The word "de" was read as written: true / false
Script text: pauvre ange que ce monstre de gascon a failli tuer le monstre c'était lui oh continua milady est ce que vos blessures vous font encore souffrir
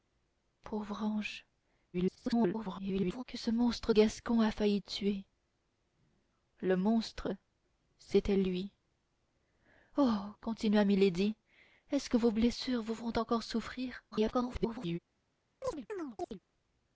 false